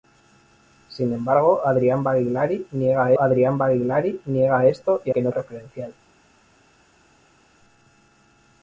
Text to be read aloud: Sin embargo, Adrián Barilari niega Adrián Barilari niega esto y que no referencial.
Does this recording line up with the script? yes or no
yes